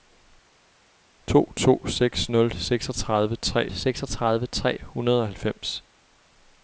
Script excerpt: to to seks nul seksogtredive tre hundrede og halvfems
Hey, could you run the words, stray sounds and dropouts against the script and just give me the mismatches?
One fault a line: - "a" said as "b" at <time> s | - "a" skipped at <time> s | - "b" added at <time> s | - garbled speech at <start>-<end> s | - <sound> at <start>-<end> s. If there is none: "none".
- "seksogtredive tre" added at 3.7 s